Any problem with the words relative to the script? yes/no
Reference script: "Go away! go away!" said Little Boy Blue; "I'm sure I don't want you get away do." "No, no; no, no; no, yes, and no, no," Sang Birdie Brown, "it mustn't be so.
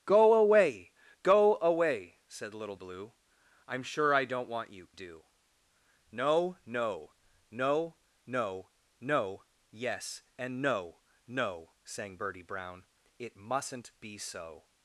yes